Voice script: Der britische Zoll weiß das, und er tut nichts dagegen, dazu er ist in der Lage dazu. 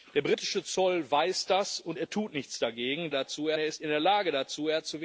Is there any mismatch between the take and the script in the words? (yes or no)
no